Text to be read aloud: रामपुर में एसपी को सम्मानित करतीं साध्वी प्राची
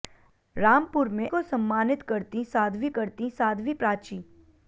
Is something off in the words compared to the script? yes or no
yes